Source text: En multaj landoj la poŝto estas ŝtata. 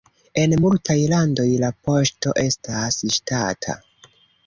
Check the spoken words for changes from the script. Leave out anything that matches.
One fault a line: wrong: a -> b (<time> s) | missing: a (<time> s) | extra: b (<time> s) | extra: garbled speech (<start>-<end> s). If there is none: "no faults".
no faults